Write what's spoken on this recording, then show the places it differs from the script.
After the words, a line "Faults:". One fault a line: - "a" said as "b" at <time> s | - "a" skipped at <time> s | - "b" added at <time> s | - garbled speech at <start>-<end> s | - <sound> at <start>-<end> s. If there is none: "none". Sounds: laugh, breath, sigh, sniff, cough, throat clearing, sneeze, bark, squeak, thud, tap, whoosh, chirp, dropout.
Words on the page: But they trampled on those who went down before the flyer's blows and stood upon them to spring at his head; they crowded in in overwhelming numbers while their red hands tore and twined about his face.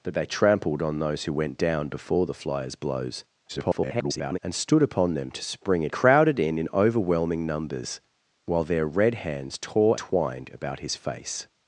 But they trampled on those who went down before the flyer's blows [garbled] and stood upon them to spring at crowded in in overwhelming numbers while their red hands tore twined about his face.
Faults:
- garbled speech at 3.5-4.4 s
- "his head they" skipped at 5.9 s
- "and" skipped at 10.0 s